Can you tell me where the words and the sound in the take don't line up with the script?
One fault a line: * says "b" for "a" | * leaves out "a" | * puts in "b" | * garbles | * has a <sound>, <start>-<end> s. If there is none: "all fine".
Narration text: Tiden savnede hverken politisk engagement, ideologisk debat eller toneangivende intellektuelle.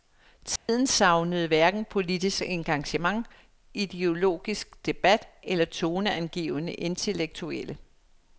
* has a dropout, 0.6-0.7 s